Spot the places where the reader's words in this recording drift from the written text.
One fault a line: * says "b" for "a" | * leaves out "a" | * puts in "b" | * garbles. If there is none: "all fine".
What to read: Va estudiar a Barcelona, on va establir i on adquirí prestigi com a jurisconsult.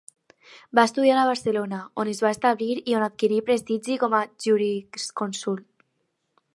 * puts in "es"